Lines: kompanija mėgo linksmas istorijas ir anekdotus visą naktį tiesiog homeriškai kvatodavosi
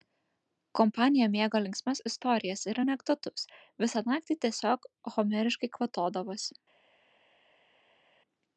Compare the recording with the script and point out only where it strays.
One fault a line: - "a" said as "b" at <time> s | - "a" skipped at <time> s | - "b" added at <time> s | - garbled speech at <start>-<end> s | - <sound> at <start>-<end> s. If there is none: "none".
none